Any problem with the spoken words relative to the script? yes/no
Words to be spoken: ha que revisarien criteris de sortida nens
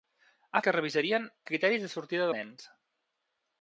no